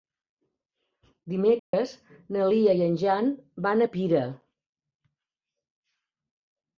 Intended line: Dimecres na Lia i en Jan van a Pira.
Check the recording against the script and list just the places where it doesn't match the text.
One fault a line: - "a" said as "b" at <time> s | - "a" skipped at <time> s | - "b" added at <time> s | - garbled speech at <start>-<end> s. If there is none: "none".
none